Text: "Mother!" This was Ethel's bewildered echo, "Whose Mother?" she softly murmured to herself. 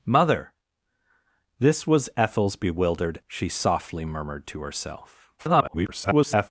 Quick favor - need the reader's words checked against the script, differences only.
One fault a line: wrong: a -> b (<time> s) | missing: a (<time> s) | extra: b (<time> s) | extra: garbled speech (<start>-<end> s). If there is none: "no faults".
missing: echo Whose Mother (3.2 s)
extra: garbled speech (5.4-6.5 s)